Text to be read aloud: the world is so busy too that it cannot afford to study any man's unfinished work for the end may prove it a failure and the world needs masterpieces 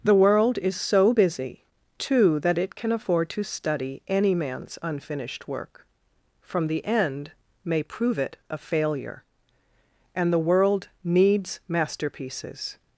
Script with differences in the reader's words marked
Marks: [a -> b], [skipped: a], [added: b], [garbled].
the world is so busy too that it [cannot -> can] afford to study any man's unfinished work [for -> from] the end may prove it a failure and the world needs masterpieces